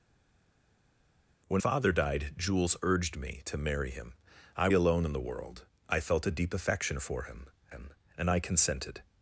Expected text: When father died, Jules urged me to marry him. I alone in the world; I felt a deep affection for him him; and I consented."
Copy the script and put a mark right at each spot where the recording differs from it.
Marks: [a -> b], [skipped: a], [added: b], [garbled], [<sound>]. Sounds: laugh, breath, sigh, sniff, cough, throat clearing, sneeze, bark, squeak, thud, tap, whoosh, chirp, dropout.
When father died, Jules urged me to marry him. I alone in the world; I felt a deep affection for him him; and I consented."